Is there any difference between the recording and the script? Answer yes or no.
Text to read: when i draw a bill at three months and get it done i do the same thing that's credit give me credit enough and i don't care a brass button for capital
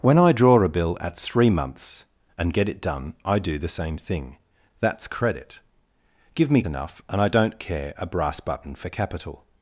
yes